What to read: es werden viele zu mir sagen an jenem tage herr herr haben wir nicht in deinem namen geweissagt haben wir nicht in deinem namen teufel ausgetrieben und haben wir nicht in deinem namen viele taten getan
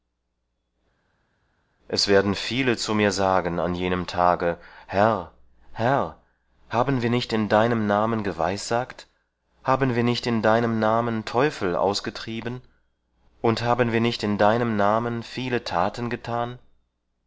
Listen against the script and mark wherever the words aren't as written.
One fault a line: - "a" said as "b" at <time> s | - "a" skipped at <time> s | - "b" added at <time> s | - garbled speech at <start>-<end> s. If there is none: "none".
none